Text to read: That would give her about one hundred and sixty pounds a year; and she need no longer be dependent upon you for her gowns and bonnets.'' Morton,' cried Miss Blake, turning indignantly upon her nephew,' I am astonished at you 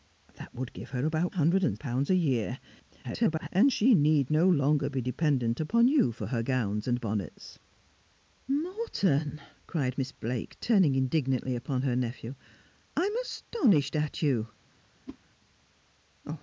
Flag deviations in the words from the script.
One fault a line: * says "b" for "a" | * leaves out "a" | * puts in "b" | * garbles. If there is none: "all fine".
* leaves out "one"
* leaves out "sixty"
* garbles